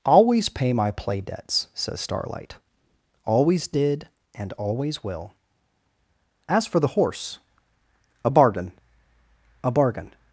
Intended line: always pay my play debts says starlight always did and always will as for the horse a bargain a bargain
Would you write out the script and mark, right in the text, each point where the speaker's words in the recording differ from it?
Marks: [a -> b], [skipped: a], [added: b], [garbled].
always pay my play debts says starlight always did and always will as for the horse a bargain a bargain